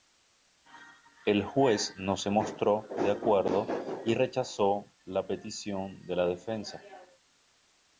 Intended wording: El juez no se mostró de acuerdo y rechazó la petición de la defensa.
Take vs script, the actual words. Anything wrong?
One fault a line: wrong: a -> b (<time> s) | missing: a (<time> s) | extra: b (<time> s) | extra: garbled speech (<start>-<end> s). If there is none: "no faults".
no faults